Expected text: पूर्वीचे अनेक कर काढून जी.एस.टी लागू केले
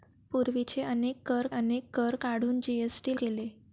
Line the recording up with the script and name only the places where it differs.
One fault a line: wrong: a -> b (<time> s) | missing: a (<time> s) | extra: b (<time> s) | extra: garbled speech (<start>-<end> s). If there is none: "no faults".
extra: अनेक कर (1.5 s)
missing: लागू (3.2 s)